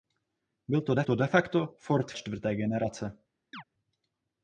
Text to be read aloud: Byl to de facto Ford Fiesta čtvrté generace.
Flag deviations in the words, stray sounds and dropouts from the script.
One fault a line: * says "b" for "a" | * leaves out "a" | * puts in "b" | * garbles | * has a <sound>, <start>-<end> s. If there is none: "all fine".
* puts in "to de"
* leaves out "Fiesta"
* has a chirp, 3.5-3.6 s